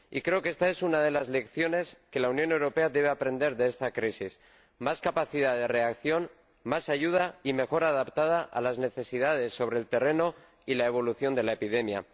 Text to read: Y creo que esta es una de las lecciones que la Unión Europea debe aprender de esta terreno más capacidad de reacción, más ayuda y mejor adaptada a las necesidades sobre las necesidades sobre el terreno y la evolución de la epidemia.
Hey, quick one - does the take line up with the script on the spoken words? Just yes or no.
no